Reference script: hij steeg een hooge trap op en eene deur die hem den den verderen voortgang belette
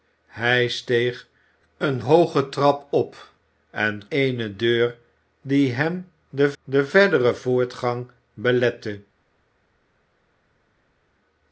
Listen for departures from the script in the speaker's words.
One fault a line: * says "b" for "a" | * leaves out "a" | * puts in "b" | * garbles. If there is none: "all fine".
all fine